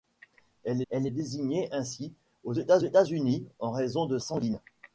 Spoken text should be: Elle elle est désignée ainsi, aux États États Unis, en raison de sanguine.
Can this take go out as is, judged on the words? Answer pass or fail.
pass